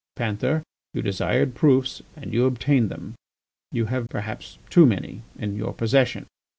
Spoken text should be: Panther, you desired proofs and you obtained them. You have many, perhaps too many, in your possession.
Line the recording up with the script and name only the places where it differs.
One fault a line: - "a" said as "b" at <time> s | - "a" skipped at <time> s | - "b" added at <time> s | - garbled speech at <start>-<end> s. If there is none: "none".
- "many" skipped at 4.1 s